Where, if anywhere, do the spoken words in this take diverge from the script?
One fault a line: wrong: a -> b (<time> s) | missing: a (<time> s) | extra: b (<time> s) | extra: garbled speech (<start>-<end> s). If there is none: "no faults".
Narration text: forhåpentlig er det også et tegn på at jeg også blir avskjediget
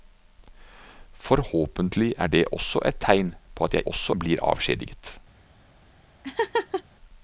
no faults